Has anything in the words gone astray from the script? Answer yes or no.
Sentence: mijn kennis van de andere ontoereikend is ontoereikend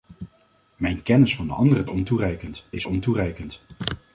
no